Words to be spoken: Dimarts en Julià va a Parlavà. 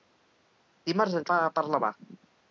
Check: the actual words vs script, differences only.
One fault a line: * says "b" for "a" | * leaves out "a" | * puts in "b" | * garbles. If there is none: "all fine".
* leaves out "Julià"